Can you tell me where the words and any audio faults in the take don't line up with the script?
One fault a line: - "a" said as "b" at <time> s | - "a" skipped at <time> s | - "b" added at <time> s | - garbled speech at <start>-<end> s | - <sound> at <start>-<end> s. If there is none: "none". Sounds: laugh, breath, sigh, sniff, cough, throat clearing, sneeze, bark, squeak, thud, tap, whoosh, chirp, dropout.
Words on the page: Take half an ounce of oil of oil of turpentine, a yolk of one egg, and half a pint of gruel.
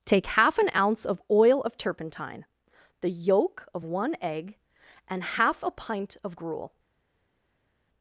- "oil of" skipped at 1.8 s
- "a" said as "the" at 3.0 s